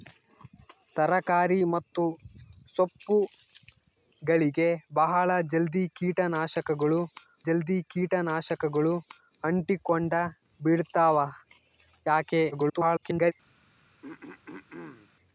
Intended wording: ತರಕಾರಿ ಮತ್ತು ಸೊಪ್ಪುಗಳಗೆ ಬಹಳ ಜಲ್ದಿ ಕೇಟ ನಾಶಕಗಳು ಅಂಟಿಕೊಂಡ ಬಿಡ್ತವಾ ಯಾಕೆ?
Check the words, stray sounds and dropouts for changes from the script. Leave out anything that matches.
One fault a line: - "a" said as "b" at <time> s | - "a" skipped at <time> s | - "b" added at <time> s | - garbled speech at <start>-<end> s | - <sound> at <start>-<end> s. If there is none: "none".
- "ಜಲ್ದಿ ಕೇಟ ನಾಶಕಗಳು" added at 7.5 s
- garbled speech at 12.5-13.3 s
- throat clearing at 14.0-15.1 s